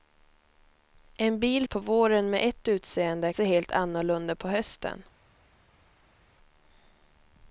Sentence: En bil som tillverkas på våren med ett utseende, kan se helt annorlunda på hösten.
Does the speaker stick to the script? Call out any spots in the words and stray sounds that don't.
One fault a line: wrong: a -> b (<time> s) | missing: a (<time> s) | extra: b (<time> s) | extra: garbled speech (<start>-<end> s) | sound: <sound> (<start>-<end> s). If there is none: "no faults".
missing: som tillverkas (1.7 s)
missing: kan (3.3 s)